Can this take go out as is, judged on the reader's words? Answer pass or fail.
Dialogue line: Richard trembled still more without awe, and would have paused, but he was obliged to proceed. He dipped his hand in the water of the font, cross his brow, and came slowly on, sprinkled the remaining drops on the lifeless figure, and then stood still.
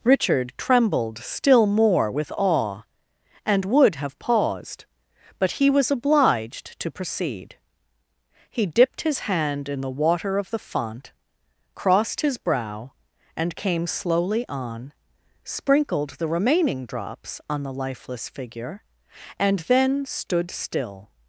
fail